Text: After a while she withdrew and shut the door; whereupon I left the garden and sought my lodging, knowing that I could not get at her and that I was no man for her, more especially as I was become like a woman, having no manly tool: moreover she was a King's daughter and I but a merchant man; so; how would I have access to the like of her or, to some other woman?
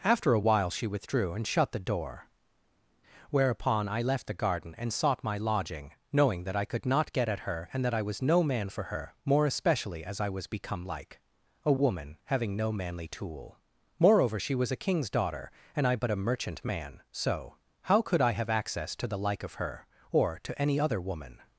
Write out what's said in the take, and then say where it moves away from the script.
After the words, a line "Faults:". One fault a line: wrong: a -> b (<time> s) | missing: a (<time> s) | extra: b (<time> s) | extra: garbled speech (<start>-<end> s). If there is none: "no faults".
After a while she withdrew and shut the door; whereupon I left the garden and sought my lodging, knowing that I could not get at her and that I was no man for her, more especially as I was become like a woman, having no manly tool: moreover she was a King's daughter and I but a merchant man; so; how could I have access to the like of her or, to any other woman?
Faults:
wrong: would -> could (18.0 s)
wrong: some -> any (20.6 s)